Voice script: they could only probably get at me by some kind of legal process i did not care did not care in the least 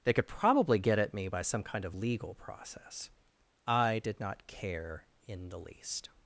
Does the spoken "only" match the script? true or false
false